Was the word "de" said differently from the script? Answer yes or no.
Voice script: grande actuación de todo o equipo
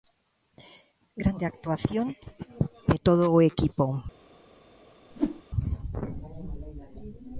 no